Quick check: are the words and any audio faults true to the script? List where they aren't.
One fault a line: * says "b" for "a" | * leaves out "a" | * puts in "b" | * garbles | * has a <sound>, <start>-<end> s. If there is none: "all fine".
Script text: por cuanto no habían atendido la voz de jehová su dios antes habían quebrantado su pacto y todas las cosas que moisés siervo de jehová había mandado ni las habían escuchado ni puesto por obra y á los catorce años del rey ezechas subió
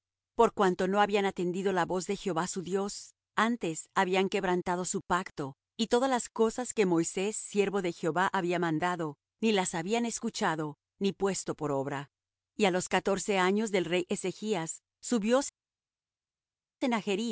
all fine